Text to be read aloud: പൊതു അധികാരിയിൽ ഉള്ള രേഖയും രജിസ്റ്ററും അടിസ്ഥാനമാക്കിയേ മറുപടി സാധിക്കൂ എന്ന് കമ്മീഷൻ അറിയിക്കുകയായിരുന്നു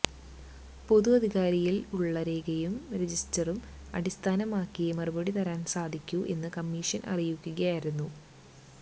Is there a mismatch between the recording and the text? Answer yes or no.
yes